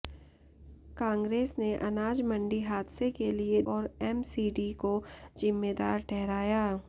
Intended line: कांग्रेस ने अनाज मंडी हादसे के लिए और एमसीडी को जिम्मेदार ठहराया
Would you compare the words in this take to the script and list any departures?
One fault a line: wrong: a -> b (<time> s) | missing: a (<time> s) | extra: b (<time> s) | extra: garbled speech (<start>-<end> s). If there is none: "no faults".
no faults